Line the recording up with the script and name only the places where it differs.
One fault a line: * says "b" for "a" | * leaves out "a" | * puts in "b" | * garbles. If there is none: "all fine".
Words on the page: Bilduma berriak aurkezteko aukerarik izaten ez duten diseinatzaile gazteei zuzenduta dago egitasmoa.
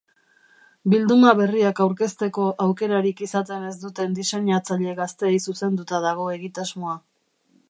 all fine